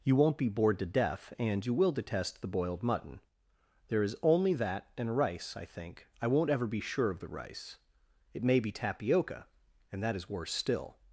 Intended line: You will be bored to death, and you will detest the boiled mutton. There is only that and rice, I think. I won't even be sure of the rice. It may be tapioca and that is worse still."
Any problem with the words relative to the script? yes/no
yes